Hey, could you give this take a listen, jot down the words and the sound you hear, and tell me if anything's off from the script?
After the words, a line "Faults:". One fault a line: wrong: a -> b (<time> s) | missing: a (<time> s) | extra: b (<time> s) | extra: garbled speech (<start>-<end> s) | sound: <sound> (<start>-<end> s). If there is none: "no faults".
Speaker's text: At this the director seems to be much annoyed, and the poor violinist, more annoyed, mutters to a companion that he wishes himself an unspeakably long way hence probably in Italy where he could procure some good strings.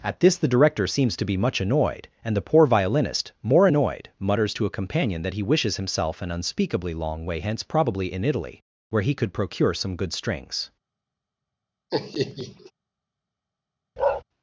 At this the director seems to be much annoyed, and the poor violinist, more annoyed, mutters to a companion that he wishes himself an unspeakably long way hence probably in Italy where he could procure some good strings.
Faults:
sound: laugh (11.9-12.7 s)
sound: bark (14.0-14.2 s)